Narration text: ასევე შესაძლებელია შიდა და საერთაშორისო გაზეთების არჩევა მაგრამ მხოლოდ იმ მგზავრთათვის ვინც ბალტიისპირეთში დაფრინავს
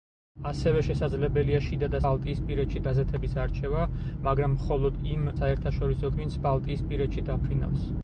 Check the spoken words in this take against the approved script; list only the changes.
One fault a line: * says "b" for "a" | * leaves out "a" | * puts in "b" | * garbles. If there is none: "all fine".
* says "ბალტიისპირეთში" for "საერთაშორისო"
* says "საერთაშორისო" for "მგზავრთათვის"